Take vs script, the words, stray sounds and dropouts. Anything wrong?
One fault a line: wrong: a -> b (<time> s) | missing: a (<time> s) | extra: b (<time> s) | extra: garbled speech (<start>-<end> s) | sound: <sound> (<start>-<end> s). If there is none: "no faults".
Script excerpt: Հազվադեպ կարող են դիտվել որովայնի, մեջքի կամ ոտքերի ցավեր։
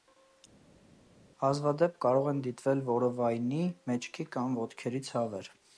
no faults